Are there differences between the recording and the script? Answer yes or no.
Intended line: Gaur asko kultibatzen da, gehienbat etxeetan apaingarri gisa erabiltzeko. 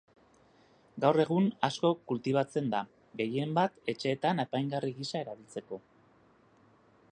yes